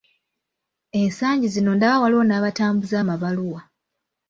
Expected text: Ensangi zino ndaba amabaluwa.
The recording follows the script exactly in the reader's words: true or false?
false